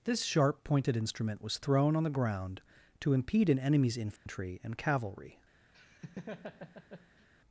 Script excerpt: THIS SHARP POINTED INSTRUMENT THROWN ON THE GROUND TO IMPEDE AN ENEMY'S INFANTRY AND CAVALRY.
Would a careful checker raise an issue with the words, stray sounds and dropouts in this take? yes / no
yes